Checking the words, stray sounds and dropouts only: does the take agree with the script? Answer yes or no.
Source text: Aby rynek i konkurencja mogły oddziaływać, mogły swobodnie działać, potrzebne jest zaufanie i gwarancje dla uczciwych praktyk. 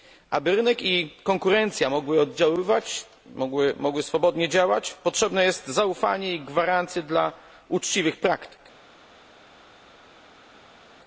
yes